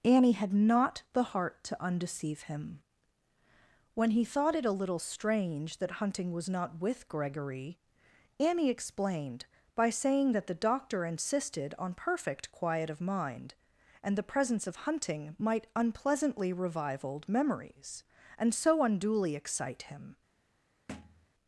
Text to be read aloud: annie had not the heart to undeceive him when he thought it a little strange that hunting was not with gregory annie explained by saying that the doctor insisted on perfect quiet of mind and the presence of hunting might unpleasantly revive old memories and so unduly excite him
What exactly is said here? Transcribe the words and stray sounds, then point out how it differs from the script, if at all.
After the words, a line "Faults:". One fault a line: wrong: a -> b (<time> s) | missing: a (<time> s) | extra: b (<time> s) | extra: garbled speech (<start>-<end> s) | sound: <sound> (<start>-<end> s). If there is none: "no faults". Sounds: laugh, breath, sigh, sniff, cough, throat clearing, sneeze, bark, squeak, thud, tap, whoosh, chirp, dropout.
annie had not the heart to undeceive him when he thought it a little strange that hunting was not with gregory annie explained by saying that the doctor insisted on perfect quiet of mind and the presence of hunting might unpleasantly revive old memories and so unduly excite him
Faults:
sound: thud (20.9-21.3 s)